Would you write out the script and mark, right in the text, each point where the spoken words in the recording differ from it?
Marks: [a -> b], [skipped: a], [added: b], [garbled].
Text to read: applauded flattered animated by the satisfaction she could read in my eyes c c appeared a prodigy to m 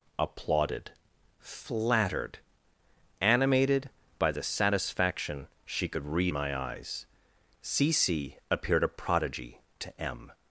applauded flattered animated by the satisfaction she could read [skipped: in] my eyes c c appeared a prodigy to m